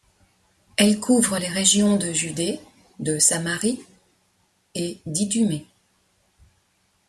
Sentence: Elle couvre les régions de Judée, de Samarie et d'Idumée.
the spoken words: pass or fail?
pass